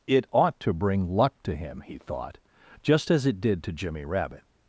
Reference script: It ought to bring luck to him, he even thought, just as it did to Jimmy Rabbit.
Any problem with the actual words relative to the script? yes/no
yes